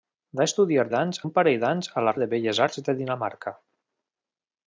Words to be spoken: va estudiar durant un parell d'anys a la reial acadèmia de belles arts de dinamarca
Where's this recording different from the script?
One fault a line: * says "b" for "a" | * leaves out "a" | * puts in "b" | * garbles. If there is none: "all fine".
* says "d'anys" for "durant"
* leaves out "reial acadèmia"